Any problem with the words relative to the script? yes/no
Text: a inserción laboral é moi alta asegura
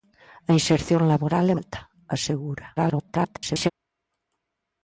yes